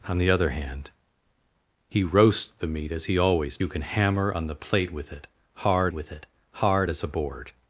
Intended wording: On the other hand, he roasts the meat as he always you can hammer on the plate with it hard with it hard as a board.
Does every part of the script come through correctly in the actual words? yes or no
yes